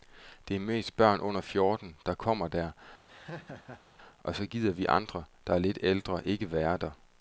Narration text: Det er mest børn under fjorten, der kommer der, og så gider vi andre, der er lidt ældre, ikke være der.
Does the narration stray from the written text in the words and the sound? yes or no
yes